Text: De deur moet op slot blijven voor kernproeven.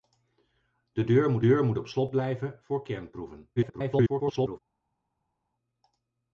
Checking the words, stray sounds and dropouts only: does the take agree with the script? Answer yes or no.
no